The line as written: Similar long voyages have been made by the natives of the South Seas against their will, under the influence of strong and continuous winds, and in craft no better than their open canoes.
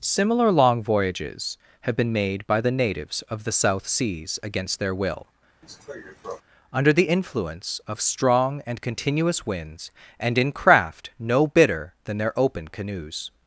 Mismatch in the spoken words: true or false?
true